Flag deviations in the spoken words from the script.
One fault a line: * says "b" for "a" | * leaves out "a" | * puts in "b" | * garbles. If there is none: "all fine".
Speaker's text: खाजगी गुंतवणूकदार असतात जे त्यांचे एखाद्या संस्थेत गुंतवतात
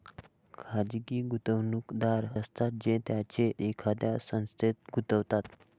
all fine